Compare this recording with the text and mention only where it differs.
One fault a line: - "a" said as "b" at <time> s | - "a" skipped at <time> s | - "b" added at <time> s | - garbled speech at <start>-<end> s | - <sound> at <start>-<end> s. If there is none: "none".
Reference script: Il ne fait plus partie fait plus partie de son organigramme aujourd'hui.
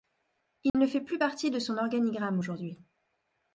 - dropout at 0.7-0.7 s
- "fait plus partie" skipped at 1.5 s